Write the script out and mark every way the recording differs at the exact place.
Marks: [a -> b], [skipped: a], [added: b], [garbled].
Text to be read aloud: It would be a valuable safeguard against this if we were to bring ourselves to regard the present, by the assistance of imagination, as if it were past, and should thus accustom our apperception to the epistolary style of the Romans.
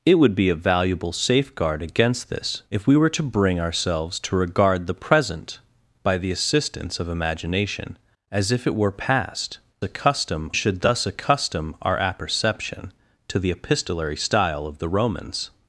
It would be a valuable safeguard against this if we were to bring ourselves to regard the present, by the assistance of imagination, as if it were past, [and -> accustom] should thus accustom our apperception to the epistolary style of the Romans.